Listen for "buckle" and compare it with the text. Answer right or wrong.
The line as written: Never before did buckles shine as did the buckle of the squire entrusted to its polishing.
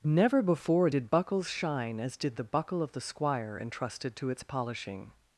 right